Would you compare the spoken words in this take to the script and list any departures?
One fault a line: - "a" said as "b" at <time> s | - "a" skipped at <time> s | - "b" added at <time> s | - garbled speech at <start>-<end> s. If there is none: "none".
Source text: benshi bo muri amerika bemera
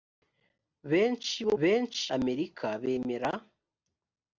- "muri" said as "benshi" at 1.6 s